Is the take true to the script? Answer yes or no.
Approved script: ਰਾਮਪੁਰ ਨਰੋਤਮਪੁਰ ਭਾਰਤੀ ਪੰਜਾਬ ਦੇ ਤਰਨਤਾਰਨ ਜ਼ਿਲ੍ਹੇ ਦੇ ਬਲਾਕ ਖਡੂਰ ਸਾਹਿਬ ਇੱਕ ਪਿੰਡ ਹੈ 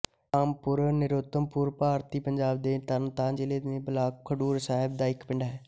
no